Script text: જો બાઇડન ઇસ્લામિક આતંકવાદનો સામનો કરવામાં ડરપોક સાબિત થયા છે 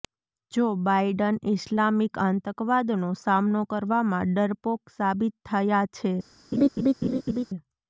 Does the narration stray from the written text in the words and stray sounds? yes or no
yes